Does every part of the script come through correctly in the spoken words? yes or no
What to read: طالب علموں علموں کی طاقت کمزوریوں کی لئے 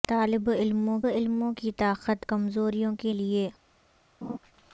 yes